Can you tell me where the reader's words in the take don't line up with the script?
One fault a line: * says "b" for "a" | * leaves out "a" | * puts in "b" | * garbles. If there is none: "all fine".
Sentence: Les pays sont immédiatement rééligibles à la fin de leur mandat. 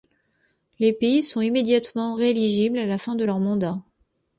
all fine